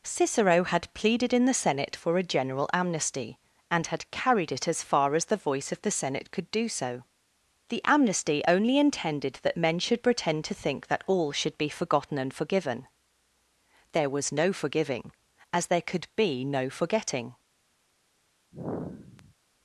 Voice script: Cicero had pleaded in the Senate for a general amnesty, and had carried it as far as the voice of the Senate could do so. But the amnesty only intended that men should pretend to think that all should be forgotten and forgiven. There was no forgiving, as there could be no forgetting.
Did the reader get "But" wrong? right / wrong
wrong